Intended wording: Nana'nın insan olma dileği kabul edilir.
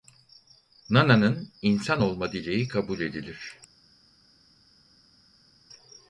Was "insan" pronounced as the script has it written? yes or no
yes